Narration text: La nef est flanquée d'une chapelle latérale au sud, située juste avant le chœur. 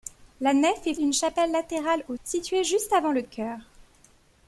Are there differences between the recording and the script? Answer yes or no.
yes